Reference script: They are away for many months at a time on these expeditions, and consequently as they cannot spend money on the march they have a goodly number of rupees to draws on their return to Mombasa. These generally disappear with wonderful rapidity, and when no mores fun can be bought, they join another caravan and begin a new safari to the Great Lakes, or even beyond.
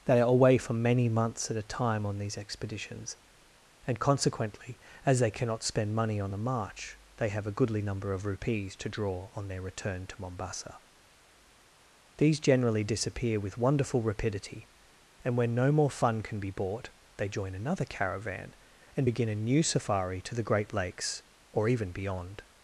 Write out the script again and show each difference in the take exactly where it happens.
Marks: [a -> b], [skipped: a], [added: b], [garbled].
They are away for many months at a time on these expeditions, and consequently as they cannot spend money on the march they have a goodly number of rupees to [draws -> draw] on their return to Mombasa. These generally disappear with wonderful rapidity, and when no [mores -> more] fun can be bought, they join another caravan and begin a new safari to the Great Lakes, or even beyond.